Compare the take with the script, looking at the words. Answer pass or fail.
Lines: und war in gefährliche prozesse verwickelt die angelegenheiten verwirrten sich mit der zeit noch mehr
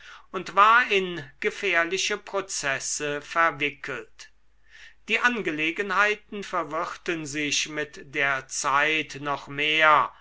pass